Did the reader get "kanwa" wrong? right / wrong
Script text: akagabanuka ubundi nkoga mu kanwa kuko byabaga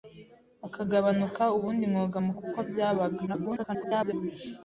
wrong